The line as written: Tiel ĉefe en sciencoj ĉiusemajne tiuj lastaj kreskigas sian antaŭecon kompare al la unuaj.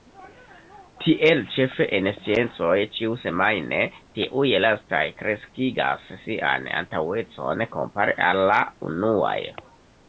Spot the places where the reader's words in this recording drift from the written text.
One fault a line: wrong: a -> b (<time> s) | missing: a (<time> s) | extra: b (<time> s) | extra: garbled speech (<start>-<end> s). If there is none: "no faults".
no faults